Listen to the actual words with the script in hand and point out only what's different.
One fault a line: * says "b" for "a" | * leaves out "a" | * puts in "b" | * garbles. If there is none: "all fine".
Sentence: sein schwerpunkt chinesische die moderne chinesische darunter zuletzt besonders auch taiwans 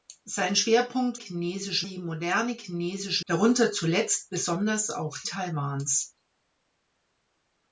all fine